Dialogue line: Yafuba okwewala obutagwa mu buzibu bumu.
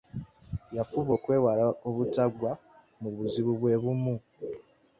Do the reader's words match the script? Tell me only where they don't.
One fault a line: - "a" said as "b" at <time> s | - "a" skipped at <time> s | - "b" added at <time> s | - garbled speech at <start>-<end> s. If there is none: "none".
- "bwe" added at 3.6 s